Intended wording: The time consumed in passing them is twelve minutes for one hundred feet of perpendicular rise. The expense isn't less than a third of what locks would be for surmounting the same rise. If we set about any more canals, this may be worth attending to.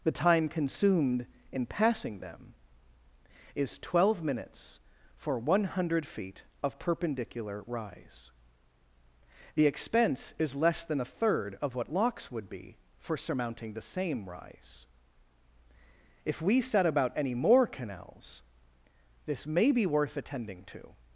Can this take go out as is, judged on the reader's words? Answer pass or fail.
fail